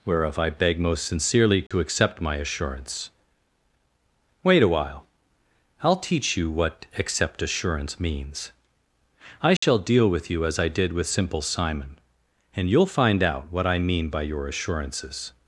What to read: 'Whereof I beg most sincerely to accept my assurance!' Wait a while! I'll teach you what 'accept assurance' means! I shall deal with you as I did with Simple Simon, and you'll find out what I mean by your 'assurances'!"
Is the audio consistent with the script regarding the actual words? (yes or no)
yes